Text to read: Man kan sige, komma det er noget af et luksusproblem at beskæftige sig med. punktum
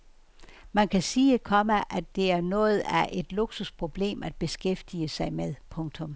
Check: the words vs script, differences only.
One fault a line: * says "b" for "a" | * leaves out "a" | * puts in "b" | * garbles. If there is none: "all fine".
* puts in "at"